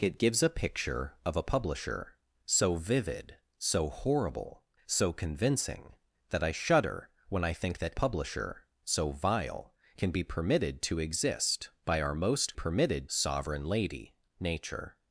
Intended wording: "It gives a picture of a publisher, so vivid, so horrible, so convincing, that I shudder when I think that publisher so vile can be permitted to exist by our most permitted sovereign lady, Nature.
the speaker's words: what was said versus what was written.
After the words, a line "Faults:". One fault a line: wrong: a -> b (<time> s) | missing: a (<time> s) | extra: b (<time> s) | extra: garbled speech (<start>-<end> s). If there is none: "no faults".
"It gives a picture of a publisher, so vivid, so horrible, so convincing, that I shudder when I think that publisher so vile can be permitted to exist by our most permitted sovereign lady, Nature.
Faults:
no faults